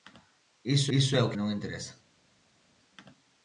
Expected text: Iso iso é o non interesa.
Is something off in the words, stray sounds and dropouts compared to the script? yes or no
no